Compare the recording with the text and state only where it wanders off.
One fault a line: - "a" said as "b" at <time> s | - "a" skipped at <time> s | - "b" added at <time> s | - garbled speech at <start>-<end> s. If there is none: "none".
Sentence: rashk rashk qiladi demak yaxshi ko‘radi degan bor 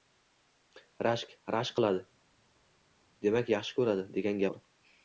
none